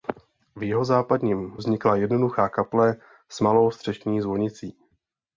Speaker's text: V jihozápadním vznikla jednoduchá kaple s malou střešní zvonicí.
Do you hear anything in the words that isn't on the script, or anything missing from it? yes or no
no